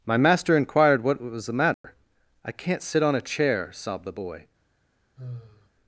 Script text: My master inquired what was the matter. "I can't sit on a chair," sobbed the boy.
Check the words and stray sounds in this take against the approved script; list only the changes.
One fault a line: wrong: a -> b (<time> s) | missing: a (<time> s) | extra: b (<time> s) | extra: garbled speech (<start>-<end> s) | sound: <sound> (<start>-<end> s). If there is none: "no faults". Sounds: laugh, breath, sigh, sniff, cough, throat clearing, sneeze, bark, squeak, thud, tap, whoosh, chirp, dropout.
sound: dropout (1.7-1.8 s)
sound: sigh (5.2-5.7 s)